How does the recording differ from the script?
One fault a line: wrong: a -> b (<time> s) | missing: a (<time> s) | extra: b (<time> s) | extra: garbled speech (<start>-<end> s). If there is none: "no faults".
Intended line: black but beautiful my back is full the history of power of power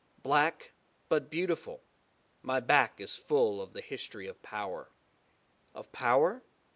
extra: of (3.6 s)